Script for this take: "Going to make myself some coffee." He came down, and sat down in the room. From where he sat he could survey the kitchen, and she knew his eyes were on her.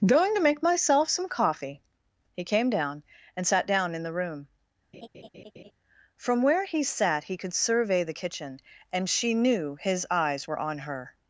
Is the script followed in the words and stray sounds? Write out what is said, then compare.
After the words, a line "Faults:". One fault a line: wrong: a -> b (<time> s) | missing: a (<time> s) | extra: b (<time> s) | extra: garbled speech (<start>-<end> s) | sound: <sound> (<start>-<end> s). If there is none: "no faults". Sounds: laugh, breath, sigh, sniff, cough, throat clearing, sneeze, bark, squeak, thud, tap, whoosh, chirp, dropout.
"Going to make myself some coffee." He came down, and sat down in the room. From where he sat he could survey the kitchen, and she knew his eyes were on her.
Faults:
sound: laugh (4.9-5.7 s)